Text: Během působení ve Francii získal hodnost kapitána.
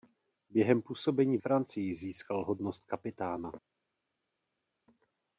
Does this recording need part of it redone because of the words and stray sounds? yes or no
yes